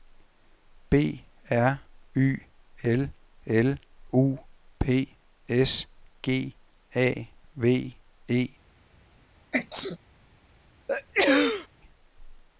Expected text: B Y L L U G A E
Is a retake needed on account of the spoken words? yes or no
yes